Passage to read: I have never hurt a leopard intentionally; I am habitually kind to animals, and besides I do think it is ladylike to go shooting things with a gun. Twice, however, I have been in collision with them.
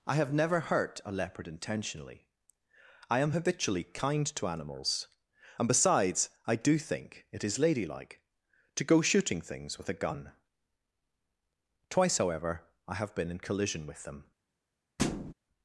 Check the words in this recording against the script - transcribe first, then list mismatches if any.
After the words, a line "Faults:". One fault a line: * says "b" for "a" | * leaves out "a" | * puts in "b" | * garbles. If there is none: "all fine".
I have never hurt a leopard intentionally; I am habitually kind to animals, and besides I do think it is ladylike to go shooting things with a gun. Twice, however, I have been in collision with them.
Faults:
all fine